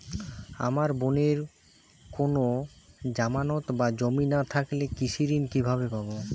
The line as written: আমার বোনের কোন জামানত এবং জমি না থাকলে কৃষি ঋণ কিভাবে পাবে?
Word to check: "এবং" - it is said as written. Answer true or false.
false